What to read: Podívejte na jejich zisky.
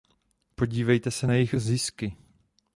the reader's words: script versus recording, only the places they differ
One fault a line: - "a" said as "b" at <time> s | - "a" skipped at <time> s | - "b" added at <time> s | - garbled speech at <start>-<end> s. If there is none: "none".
- "se" added at 1.1 s